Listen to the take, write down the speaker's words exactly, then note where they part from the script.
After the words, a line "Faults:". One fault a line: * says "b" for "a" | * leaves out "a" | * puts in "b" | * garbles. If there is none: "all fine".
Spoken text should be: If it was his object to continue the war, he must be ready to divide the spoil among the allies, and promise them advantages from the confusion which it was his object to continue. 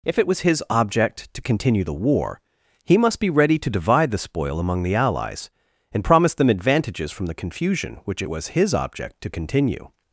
If it was his object to continue the war, he must be ready to divide the spoil among the allies, and promise them advantages from the confusion which it was his object to continue.
Faults:
all fine